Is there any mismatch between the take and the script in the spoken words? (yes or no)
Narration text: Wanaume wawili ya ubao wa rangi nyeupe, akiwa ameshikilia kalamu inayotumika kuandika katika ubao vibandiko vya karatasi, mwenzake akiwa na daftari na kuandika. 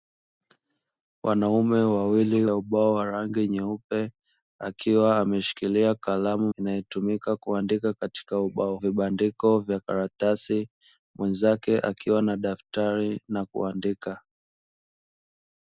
no